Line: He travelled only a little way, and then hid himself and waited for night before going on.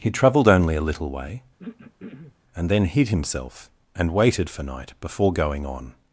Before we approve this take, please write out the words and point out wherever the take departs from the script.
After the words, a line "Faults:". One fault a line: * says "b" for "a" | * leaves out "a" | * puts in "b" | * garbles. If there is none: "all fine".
He travelled only a little way, and then hid himself and waited for night before going on.
Faults:
all fine